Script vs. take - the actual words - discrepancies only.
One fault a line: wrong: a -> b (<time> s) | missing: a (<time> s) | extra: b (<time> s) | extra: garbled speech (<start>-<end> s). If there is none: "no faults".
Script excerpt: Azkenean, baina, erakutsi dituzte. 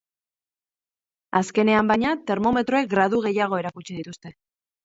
extra: termometroek gradu gehiago (2.3 s)